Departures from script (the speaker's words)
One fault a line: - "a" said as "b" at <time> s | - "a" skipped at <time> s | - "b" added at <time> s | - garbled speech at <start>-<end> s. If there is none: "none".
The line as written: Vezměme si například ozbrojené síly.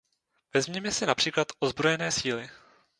none